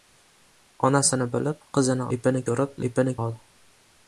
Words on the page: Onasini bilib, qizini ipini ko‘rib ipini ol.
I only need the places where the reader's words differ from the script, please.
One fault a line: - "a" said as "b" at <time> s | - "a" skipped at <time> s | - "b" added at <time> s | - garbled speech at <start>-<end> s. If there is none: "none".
none